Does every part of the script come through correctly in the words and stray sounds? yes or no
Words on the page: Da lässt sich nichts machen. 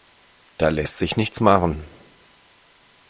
yes